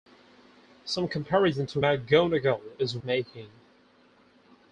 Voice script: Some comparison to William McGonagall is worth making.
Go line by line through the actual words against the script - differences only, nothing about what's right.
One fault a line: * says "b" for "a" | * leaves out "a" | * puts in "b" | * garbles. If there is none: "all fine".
* leaves out "William"
* leaves out "worth"